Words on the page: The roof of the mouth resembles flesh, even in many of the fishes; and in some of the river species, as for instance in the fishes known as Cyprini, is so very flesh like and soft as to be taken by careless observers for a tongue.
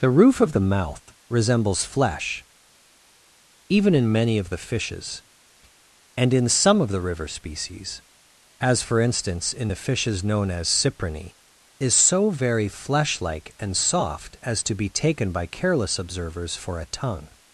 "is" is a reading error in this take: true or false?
false